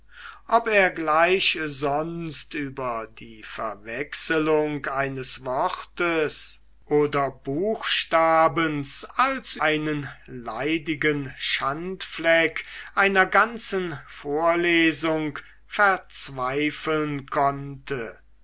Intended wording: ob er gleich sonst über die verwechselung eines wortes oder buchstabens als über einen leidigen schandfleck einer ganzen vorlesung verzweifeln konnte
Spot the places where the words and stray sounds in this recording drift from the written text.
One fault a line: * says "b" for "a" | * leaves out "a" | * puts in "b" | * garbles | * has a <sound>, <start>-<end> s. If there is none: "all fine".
* leaves out "über"